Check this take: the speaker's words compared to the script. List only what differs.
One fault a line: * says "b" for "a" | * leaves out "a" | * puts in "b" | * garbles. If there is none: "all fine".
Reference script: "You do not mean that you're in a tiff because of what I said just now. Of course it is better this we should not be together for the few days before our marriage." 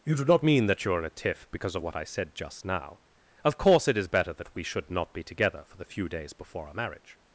* says "that" for "this"